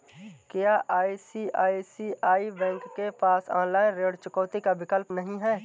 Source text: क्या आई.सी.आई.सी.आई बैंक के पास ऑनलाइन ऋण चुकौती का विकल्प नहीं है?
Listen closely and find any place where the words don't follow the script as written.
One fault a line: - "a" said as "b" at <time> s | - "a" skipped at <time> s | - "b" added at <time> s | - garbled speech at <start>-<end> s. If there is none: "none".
none